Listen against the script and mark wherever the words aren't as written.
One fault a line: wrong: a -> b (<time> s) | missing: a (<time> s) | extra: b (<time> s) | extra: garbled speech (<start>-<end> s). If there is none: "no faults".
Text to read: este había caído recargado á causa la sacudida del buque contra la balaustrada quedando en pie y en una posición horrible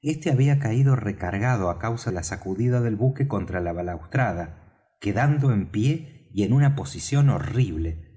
no faults